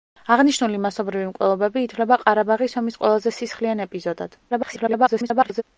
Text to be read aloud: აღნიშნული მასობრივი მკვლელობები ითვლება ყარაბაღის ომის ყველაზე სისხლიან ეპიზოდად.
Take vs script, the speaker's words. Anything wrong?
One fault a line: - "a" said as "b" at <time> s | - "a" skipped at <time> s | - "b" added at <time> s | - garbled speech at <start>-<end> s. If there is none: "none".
- garbled speech at 4.5-5.6 s